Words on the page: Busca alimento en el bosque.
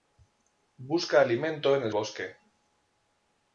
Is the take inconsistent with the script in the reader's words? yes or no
no